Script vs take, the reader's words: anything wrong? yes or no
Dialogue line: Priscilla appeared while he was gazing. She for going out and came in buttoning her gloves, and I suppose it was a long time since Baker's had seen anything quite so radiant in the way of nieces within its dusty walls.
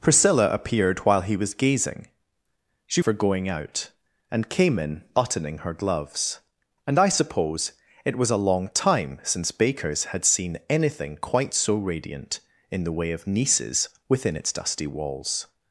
no